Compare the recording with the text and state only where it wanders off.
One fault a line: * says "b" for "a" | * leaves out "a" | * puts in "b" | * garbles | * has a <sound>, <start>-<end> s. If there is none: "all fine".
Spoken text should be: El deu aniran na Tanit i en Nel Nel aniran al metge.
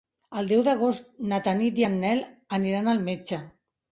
* says "d'agost" for "aniran"
* leaves out "Nel"